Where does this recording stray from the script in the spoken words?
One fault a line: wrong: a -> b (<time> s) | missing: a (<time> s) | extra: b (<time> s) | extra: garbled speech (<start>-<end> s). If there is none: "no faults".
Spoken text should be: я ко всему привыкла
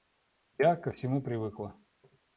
no faults